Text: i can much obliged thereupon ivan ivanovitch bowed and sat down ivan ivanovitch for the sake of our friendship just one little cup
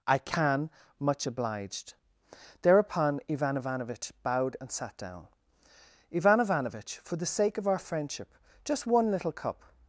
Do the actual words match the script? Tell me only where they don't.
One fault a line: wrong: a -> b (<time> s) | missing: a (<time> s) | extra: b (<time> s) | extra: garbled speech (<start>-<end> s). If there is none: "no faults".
no faults